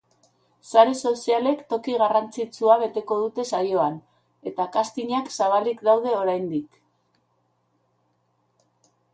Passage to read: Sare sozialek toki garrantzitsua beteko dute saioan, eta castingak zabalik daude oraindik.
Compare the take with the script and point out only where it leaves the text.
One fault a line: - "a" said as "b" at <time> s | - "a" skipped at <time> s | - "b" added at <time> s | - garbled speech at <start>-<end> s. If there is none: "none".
none